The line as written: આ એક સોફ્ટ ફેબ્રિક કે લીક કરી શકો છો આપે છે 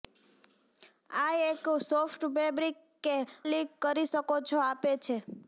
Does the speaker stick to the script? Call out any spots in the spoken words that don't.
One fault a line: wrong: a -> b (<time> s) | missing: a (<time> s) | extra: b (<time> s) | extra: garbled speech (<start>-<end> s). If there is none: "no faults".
no faults